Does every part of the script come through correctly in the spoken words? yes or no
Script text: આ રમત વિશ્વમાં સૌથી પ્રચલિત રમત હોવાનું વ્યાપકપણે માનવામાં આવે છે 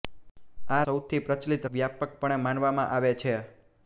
no